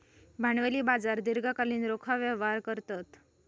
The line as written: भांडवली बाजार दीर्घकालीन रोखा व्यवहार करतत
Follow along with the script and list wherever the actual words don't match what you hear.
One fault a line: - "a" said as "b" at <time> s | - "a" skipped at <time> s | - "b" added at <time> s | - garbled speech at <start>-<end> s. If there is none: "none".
none